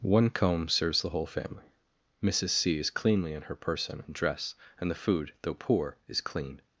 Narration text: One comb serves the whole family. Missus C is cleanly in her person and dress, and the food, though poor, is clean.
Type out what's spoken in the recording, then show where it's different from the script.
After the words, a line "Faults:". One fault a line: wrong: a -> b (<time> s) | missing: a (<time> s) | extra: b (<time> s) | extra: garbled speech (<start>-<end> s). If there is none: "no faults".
One comb serves the whole family. Missus C is cleanly in her person and dress, and the food, though poor, is clean.
Faults:
no faults